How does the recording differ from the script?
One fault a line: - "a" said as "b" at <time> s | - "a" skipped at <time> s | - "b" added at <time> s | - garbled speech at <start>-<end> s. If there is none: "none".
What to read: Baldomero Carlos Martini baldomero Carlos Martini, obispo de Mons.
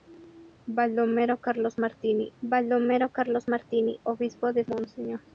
none